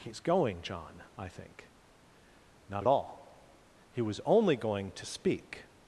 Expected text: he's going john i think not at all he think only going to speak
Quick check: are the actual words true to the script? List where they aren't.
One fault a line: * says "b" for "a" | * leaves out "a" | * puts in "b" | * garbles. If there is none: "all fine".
* says "was" for "think"